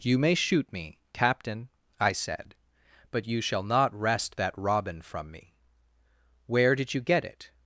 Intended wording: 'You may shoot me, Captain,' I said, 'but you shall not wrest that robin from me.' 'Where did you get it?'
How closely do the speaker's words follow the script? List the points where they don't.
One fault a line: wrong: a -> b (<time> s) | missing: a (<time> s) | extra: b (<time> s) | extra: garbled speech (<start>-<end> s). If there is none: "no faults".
no faults